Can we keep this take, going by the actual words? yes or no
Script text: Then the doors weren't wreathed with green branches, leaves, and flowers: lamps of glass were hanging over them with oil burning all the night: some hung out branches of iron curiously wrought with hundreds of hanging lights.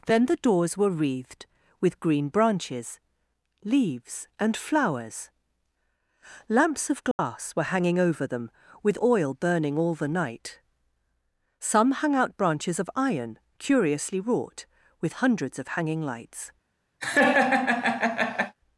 no